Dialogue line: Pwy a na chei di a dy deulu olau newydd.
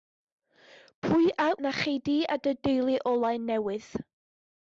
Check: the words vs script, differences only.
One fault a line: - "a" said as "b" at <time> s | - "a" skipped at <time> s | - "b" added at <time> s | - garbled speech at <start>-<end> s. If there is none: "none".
none